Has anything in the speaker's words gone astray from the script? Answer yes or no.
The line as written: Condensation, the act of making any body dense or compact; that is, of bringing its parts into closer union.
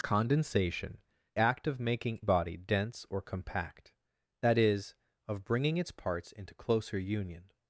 yes